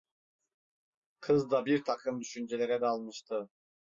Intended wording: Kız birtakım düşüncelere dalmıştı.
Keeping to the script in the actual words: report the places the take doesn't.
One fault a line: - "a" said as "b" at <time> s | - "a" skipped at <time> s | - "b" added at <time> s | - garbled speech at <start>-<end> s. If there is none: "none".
- "da" added at 1.5 s